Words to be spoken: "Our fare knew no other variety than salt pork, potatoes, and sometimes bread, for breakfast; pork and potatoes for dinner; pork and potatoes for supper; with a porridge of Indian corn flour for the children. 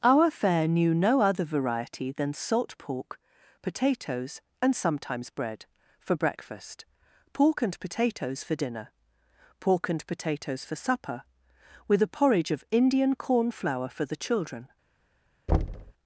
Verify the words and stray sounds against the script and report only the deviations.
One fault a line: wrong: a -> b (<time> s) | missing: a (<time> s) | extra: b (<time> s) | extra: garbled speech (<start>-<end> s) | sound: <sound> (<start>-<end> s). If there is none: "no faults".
sound: thud (15.5-15.9 s)